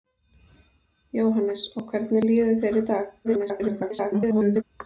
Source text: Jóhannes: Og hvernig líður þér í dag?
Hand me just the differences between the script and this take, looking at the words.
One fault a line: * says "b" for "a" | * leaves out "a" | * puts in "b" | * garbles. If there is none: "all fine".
* garbles